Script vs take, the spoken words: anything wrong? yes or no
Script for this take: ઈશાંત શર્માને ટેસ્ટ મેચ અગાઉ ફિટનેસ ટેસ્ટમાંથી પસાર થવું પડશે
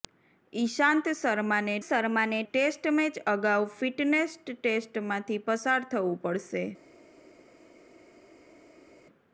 yes